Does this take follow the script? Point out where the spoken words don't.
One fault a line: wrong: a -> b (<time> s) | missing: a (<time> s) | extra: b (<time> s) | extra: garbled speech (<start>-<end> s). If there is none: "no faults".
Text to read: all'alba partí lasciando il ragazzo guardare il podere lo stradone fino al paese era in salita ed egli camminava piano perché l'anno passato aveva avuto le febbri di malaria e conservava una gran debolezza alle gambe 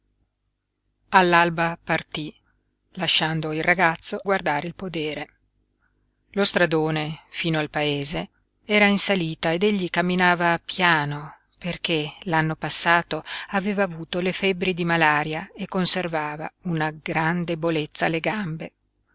no faults